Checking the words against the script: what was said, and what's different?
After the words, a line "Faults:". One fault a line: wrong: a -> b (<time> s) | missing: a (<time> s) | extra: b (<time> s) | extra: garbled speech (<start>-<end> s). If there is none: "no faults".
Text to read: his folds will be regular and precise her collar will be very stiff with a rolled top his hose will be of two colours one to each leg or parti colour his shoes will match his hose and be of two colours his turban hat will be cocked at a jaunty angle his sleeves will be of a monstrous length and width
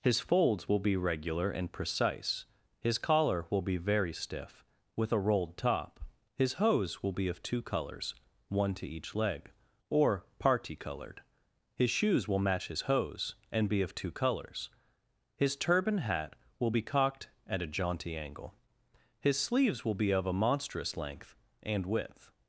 his folds will be regular and precise his collar will be very stiff with a rolled top his hose will be of two colours one to each leg or parti coloured his shoes will match his hose and be of two colours his turban hat will be cocked at a jaunty angle his sleeves will be of a monstrous length and width
Faults:
wrong: her -> his (2.8 s)
wrong: colour -> coloured (10.8 s)